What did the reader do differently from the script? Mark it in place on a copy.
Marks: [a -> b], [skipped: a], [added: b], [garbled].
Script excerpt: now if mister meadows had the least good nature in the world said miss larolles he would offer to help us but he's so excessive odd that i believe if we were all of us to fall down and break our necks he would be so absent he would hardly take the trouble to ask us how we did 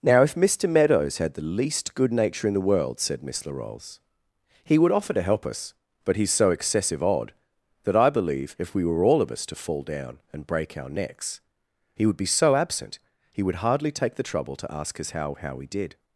now if mister meadows had the least good nature in the world said miss larolles he would offer to help us but he's so excessive odd that i believe if we were all of us to fall down and break our necks he would be so absent he would hardly take the trouble to ask us how [added: how] we did